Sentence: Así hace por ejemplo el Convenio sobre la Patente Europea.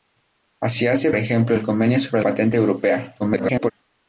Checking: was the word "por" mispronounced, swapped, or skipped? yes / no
yes